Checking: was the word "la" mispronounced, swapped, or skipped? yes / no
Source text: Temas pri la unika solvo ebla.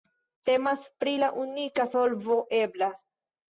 no